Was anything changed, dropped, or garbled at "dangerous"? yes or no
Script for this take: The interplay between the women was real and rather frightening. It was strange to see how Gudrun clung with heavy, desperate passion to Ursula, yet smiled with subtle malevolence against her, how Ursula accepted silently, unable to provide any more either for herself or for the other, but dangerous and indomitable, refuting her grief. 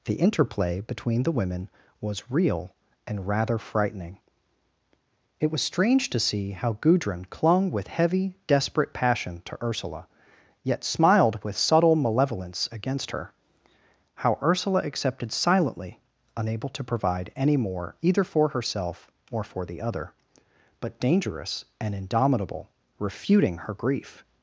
no